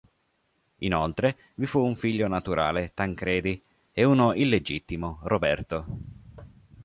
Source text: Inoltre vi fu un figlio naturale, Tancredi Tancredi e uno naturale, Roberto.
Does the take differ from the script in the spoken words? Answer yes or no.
yes